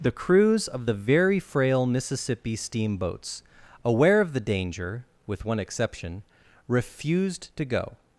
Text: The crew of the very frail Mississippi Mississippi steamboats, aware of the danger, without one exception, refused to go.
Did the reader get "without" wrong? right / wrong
wrong